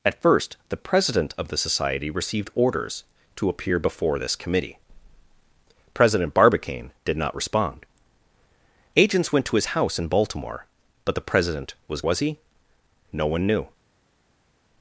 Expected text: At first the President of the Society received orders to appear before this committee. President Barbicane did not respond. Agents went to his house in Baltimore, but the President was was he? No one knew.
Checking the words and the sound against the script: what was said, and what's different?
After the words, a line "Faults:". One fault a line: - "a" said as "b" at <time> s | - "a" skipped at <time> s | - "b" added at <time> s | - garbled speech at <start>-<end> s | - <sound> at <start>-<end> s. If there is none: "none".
At first the President of the Society received orders to appear before this committee. President Barbicane did not respond. Agents went to his house in Baltimore, but the President was was he? No one knew.
Faults:
none